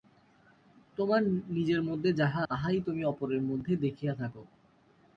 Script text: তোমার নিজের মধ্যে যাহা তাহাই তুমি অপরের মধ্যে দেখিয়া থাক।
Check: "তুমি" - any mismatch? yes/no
no